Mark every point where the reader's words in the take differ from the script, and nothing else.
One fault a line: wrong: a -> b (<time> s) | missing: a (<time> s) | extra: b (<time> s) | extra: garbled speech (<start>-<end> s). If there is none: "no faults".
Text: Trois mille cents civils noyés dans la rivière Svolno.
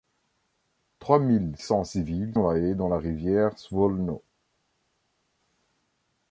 no faults